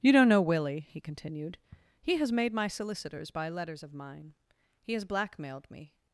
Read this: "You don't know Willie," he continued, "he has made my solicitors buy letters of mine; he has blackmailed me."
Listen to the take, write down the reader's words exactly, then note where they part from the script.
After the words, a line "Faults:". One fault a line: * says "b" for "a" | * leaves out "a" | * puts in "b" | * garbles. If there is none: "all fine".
"You don't know Willie," he continued, "he has made my solicitors buy letters of mine; he has blackmailed me."
Faults:
all fine